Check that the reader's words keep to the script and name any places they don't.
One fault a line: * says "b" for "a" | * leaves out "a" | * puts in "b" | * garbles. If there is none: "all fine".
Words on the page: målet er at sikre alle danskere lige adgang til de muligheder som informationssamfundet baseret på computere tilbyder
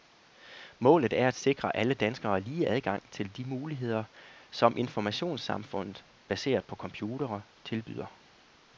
all fine